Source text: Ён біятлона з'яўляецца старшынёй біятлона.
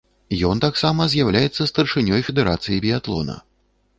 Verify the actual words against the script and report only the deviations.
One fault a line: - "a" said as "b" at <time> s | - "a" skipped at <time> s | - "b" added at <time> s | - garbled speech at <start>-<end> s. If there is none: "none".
- "біятлона" said as "таксама" at 0.6 s
- "федэрацыі" added at 2.3 s